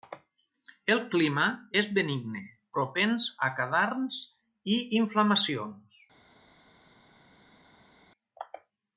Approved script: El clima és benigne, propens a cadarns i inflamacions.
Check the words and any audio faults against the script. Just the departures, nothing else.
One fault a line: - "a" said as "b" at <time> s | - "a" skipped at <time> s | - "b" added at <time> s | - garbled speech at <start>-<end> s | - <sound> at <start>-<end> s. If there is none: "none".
none